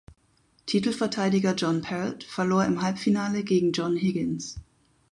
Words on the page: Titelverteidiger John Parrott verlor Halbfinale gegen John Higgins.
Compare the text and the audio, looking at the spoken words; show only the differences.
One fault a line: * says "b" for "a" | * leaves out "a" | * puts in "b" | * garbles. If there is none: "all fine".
* puts in "im"